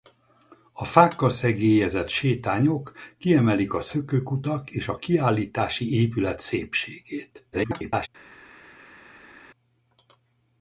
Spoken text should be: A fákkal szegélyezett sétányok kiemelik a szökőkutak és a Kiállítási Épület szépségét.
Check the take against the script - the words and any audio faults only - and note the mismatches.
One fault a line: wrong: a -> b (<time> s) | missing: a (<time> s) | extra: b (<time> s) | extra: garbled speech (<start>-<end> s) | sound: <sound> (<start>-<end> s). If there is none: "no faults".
extra: garbled speech (7.5-8.1 s)